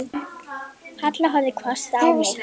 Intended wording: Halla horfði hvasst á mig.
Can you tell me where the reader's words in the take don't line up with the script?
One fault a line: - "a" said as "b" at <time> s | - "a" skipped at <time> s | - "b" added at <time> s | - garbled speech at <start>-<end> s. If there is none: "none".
none